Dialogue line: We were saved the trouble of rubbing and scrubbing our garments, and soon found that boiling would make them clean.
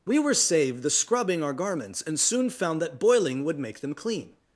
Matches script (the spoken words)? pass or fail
fail